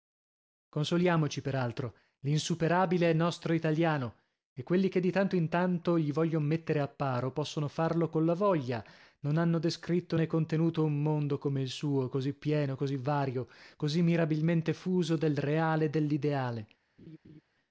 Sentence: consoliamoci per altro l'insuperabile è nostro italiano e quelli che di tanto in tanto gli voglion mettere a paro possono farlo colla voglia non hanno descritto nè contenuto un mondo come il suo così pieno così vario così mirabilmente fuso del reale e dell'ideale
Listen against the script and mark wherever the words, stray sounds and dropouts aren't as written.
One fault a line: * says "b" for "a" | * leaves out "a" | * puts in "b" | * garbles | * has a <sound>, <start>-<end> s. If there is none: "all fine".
* has a laugh, 17.0-17.4 s